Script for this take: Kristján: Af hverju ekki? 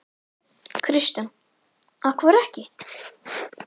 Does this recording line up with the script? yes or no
yes